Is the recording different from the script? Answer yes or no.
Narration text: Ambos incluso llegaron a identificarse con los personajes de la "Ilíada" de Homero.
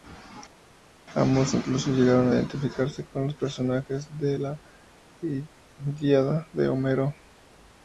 no